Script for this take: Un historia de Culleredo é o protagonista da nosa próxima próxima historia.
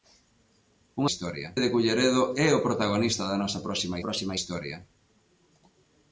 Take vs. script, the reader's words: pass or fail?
pass